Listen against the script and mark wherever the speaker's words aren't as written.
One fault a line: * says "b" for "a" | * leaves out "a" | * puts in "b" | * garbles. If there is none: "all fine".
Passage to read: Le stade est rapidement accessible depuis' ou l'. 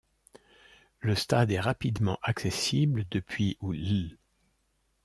all fine